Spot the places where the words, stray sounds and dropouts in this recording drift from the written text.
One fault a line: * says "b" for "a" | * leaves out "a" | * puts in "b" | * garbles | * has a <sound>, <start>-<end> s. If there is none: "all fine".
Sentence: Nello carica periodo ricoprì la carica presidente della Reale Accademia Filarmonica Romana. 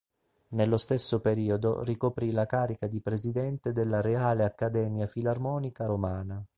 * says "stesso" for "carica"
* puts in "di"